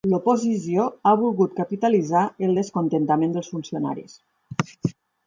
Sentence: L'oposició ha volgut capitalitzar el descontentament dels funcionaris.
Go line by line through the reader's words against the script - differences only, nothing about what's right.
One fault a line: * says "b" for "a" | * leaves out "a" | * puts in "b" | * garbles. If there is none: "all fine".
all fine